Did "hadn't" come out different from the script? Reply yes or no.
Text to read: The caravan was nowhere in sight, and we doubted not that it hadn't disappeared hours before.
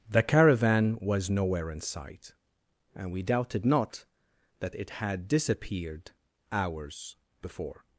yes